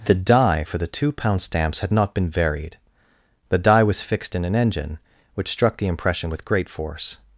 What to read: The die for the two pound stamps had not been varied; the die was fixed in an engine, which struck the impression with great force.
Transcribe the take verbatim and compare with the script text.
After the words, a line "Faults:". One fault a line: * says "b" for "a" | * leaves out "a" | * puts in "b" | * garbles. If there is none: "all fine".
The die for the two pound stamps had not been varied; the die was fixed in an engine, which struck the impression with great force.
Faults:
all fine